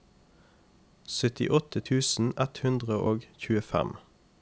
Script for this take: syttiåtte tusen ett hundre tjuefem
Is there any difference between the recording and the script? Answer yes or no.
yes